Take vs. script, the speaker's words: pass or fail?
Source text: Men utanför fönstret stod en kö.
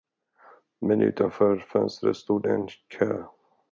pass